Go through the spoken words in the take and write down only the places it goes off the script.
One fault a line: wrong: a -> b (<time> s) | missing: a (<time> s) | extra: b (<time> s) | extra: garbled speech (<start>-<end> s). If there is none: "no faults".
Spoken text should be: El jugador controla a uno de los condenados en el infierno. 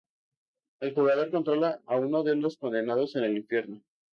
no faults